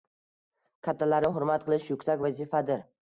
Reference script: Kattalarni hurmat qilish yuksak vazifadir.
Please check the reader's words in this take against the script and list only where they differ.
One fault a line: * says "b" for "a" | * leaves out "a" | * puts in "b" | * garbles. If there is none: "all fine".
all fine